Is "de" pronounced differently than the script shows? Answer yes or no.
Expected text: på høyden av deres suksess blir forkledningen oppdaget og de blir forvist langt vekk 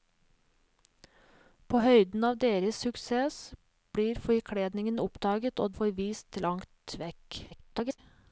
yes